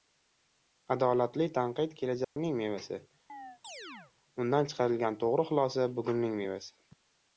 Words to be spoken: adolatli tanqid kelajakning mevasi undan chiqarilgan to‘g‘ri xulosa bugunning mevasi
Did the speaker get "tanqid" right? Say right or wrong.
right